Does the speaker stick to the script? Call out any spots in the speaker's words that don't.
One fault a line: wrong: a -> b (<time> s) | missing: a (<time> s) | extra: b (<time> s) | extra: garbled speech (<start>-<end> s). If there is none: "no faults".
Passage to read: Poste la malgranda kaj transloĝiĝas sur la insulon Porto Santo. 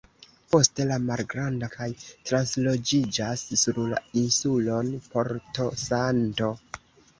no faults